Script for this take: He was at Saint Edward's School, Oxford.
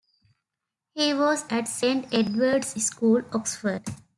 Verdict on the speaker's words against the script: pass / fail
pass